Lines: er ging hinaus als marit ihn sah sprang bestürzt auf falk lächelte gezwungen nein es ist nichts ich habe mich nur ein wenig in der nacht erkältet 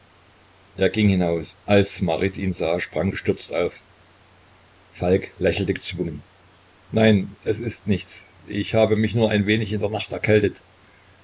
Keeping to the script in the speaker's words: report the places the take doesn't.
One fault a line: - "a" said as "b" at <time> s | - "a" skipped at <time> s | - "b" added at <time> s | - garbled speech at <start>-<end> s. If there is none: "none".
none